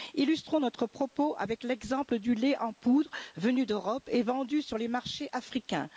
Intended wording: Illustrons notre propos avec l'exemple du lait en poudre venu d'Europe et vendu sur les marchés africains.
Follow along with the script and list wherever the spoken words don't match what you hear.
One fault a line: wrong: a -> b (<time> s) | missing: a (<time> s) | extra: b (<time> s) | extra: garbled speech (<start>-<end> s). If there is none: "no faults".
no faults